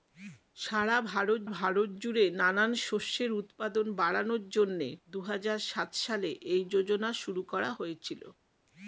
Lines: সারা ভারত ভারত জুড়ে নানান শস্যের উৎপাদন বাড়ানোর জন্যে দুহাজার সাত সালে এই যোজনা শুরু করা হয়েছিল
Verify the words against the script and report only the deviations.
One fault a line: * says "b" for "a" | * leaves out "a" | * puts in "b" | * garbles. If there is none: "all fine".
all fine